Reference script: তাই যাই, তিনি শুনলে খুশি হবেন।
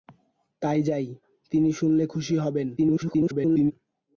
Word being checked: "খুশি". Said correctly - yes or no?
yes